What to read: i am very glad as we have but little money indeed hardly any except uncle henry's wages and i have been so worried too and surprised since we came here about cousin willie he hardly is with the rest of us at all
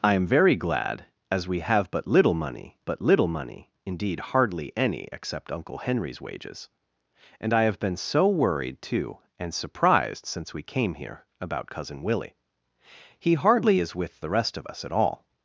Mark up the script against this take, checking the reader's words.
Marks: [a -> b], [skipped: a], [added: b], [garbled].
i am very glad as we have but little money [added: but little money] indeed hardly any except uncle henry's wages and i have been so worried too and surprised since we came here about cousin willie he hardly is with the rest of us at all